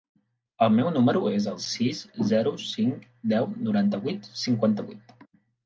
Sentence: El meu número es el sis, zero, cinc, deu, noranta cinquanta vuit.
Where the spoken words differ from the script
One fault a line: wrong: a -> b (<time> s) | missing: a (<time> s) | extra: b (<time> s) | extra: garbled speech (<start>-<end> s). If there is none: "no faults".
extra: vuit (4.1 s)